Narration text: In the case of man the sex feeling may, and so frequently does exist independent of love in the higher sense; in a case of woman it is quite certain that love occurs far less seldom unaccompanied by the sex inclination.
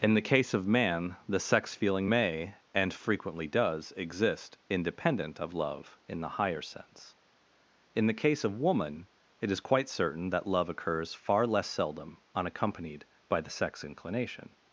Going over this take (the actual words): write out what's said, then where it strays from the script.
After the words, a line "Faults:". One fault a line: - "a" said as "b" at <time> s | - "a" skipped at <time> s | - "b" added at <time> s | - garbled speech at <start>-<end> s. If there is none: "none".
In the case of man the sex feeling may, and frequently does exist independent of love in the higher sense; in the case of woman it is quite certain that love occurs far less seldom unaccompanied by the sex inclination.
Faults:
- "so" skipped at 2.9 s
- "a" said as "the" at 8.1 s